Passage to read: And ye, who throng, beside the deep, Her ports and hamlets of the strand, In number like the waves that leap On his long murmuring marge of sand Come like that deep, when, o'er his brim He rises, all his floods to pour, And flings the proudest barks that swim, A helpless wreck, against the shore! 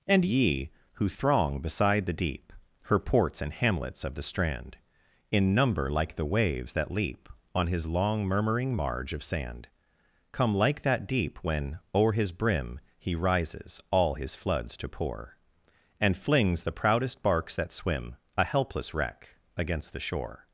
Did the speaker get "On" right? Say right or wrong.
right